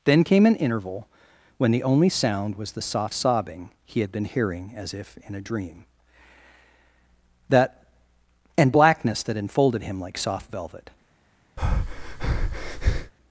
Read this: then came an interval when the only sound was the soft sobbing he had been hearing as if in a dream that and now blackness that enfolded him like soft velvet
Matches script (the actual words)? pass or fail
fail